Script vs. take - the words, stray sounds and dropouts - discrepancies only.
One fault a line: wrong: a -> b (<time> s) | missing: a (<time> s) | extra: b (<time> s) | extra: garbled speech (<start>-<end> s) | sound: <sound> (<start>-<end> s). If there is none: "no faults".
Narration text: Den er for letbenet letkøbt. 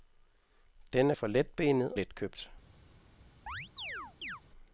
sound: chirp (3.5-4.4 s)